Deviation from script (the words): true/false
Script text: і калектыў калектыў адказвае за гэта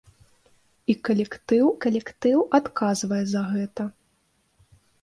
false